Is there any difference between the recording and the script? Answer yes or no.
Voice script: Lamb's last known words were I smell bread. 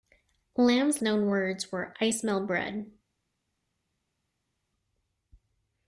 yes